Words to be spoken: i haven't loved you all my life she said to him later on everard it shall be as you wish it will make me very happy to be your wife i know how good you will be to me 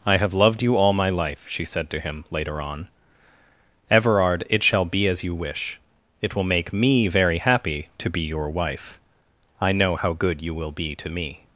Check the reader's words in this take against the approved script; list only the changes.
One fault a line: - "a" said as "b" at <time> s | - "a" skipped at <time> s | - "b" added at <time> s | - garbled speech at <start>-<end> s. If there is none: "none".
- "haven't" said as "have" at 0.2 s